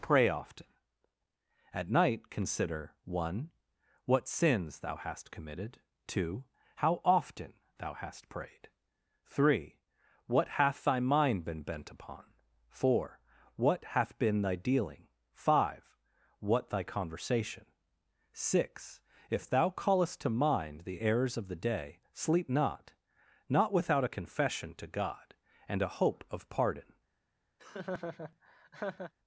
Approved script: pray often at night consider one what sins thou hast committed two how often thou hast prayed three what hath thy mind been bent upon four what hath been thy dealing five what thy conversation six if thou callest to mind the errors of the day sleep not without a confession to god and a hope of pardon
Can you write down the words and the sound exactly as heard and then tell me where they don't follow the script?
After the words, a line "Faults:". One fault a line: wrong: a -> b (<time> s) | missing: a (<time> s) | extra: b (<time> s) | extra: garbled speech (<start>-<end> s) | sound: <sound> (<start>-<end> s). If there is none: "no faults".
pray often at night consider one what sins thou hast committed two how often thou hast prayed three what hath thy mind been bent upon four what hath been thy dealing five what thy conversation six if thou callest to mind the errors of the day sleep not not without a confession to god and a hope of pardon
Faults:
extra: not (23.5 s)
sound: laugh (27.6-29.1 s)